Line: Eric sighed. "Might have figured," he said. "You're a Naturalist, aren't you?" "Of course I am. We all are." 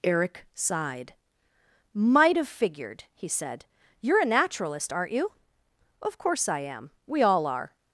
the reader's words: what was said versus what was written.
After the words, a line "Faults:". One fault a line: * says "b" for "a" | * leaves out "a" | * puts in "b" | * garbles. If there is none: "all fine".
Eric sighed. "Might have figured," he said. "You're a Naturalist, aren't you?" "Of course I am. We all are."
Faults:
all fine